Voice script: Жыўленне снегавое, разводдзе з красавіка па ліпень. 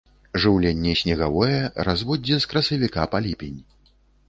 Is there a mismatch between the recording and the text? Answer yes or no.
no